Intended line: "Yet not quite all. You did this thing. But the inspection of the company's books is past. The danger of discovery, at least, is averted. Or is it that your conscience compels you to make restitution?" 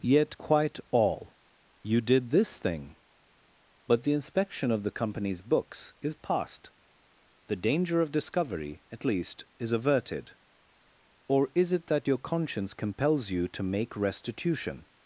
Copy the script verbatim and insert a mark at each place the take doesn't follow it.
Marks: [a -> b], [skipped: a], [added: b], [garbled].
"Yet [skipped: not] quite all. You did this thing. But the inspection of the company's books is past. The danger of discovery, at least, is averted. Or is it that your conscience compels you to make restitution?"